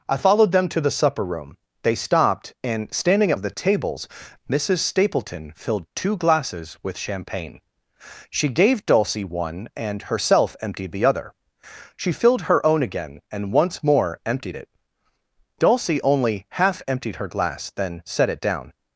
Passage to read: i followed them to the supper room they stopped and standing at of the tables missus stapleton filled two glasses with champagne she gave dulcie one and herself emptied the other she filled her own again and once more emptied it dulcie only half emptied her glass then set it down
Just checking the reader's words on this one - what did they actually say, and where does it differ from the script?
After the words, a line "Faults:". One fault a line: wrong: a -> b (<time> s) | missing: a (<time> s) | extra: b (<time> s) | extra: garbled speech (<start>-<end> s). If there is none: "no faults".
i followed them to the supper room they stopped and standing at of the tables missus stapleton filled two glasses with champagne she gave dulcie one and herself emptied the other she filled her own again and once more emptied it dulcie only half emptied her glass then set it down
Faults:
no faults